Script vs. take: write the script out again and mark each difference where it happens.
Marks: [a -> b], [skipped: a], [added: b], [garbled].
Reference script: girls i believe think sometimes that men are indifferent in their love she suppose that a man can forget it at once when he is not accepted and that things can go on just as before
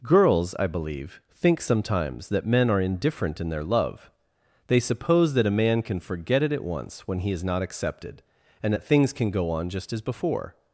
girls i believe think sometimes that men are indifferent in their love [she -> they] suppose that a man can forget it at once when he is not accepted and that things can go on just as before